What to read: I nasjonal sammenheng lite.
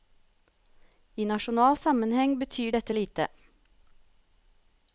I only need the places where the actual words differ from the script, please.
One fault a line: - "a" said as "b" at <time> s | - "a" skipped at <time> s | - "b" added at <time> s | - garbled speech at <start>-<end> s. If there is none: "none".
- "betyr dette" added at 2.4 s